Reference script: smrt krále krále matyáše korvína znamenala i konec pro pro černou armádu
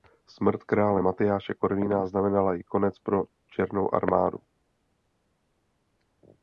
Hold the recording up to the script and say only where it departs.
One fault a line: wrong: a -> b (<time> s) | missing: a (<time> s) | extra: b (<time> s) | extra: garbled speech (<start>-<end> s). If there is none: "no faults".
missing: krále (1.0 s)
missing: pro (3.2 s)